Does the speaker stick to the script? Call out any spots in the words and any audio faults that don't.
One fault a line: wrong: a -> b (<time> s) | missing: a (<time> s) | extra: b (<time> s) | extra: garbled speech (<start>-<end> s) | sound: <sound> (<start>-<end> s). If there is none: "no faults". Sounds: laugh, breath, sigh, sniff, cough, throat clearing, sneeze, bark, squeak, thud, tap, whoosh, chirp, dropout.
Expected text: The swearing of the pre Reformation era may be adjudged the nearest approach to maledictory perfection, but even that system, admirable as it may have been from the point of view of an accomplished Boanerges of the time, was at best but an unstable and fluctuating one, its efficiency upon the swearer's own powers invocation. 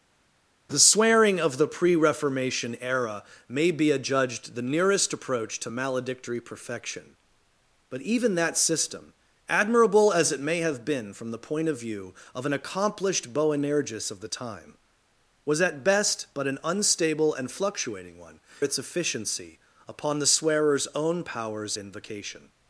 no faults